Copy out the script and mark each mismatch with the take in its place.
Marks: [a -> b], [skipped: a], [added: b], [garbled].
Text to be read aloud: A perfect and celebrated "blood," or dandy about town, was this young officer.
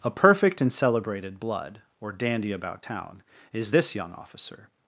A perfect and celebrated "blood," or dandy about town, [was -> is] this young officer.